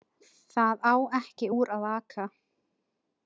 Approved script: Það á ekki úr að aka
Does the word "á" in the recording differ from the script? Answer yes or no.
no